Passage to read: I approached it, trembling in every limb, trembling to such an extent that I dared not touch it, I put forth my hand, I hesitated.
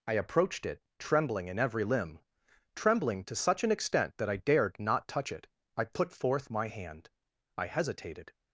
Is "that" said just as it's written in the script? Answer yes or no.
yes